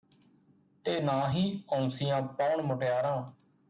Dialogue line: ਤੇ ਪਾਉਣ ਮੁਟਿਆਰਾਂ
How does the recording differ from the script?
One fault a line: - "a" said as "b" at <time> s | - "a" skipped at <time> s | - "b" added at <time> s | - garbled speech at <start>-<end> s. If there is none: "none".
- "ਨਾ ਹੀ ਔਂਸੀਆਂ" added at 1.0 s